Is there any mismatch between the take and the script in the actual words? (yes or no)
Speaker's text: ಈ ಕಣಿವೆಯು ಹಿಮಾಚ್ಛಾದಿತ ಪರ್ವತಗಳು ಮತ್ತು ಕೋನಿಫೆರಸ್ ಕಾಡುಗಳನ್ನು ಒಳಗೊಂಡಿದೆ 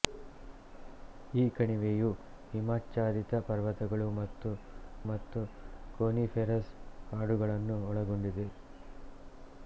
yes